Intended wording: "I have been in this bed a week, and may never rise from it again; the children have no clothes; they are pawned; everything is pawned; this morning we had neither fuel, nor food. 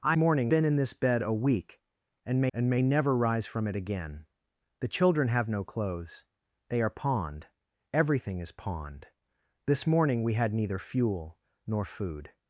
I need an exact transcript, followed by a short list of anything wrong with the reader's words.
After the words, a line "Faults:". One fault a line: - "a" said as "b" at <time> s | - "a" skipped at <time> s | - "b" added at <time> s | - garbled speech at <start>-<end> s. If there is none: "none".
"I morning been in this bed a week, and may and may never rise from it again; the children have no clothes; they are pawned; everything is pawned; this morning we had neither fuel, nor food.
Faults:
- "have" said as "morning" at 0.1 s
- "and may" added at 2.5 s